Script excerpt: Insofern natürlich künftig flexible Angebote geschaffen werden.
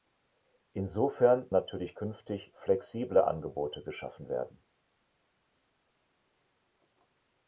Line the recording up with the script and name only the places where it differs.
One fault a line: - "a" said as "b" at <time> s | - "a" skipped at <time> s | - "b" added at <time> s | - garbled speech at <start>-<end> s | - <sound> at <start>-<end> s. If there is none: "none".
none